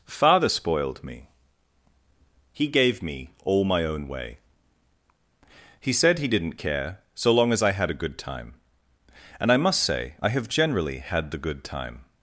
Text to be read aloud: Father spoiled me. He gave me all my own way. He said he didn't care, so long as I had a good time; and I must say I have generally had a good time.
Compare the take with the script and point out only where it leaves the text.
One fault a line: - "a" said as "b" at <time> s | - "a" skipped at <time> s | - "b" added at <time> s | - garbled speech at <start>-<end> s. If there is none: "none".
- "a" said as "the" at 11.3 s